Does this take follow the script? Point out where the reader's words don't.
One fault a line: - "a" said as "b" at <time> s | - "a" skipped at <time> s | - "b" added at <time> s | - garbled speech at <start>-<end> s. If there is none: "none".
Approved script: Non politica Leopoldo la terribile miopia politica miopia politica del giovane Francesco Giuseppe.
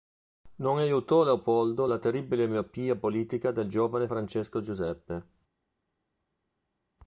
- "politica" said as "aiutò" at 0.8 s
- "miopia politica" skipped at 3.5 s